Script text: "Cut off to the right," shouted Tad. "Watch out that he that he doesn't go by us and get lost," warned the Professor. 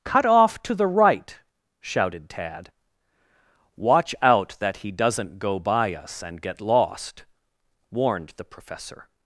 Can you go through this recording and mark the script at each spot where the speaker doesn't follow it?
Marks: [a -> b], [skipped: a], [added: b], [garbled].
"Cut off to the right," shouted Tad. "Watch out that he [skipped: that he] doesn't go by us and get lost," warned the Professor.